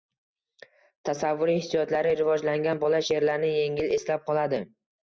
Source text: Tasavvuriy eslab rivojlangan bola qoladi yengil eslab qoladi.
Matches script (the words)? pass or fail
fail